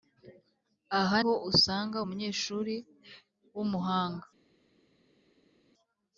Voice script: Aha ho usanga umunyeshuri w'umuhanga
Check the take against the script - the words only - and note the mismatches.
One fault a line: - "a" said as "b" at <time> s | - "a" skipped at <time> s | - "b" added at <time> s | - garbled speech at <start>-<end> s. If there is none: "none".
none